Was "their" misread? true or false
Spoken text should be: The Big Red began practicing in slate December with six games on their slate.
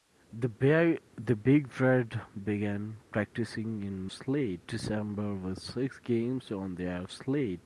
false